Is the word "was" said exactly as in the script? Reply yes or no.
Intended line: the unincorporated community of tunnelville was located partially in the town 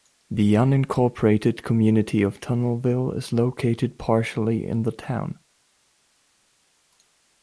no